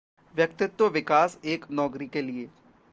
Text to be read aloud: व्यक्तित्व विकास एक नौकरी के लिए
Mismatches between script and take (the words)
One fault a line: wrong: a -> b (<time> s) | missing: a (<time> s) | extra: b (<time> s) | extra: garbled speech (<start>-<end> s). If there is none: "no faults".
no faults